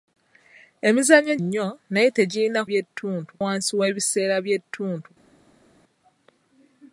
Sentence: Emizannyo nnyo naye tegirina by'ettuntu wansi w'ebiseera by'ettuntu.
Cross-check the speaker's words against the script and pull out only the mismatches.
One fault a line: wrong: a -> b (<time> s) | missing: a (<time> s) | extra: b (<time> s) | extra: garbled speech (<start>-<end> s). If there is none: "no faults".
no faults